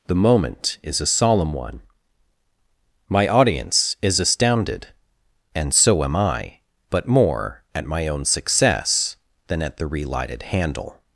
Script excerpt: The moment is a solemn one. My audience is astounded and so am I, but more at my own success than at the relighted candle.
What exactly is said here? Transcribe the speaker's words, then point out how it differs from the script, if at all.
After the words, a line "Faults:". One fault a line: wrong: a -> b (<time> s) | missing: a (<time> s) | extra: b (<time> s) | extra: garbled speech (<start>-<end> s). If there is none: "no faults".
The moment is a solemn one. My audience is astounded and so am I, but more at my own success than at the relighted handle.
Faults:
wrong: candle -> handle (10.4 s)